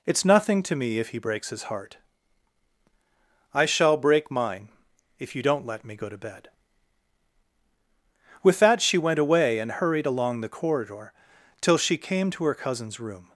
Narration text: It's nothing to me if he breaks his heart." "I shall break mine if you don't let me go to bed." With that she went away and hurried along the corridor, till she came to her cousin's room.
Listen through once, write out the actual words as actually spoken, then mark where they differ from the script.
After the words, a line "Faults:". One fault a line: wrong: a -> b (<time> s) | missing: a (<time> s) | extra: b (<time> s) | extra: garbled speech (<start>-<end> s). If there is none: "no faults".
It's nothing to me if he breaks his heart." "I shall break mine if you don't let me go to bed." With that she went away and hurried along the corridor, till she came to her cousin's room.
Faults:
no faults